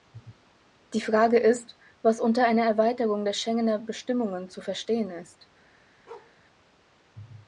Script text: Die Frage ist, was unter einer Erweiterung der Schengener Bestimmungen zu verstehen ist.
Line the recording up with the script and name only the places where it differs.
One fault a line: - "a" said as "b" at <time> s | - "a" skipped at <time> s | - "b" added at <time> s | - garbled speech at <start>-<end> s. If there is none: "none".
none